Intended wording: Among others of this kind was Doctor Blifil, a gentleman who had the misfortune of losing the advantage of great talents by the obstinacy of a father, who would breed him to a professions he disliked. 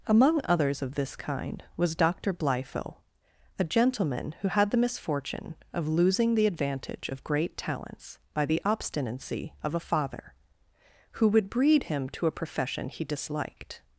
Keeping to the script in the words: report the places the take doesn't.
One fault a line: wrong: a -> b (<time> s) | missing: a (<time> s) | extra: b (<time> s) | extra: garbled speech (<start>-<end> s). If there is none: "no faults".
wrong: professions -> profession (12.3 s)